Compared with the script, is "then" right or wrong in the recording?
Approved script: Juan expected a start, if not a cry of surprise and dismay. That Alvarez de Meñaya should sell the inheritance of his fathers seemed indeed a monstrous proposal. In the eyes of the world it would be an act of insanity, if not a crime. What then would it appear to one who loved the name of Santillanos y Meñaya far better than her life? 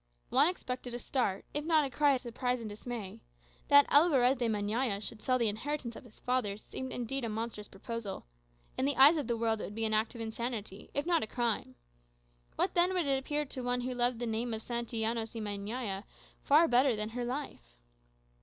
right